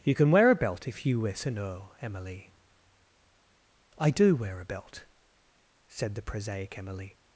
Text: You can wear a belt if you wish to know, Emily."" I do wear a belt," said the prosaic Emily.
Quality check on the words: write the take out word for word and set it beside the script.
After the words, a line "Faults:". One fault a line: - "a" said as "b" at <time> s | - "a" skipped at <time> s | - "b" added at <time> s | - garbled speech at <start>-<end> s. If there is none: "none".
You can wear a belt if you wish to know, Emily."" I do wear a belt," said the prosaic Emily.
Faults:
none